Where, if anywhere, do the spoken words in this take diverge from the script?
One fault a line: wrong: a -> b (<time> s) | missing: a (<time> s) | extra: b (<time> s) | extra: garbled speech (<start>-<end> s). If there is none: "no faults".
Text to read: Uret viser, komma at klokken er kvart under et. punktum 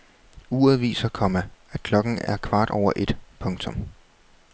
wrong: under -> over (2.7 s)